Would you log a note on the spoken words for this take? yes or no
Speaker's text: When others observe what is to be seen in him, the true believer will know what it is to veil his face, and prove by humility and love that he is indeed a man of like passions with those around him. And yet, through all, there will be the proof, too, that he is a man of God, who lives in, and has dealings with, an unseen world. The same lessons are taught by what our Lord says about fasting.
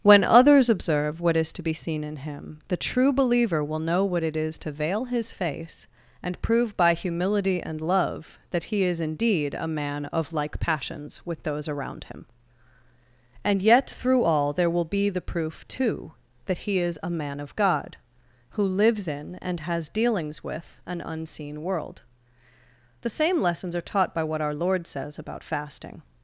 no